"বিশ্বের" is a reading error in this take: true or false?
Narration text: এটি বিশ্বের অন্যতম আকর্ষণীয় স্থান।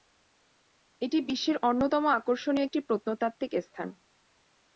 false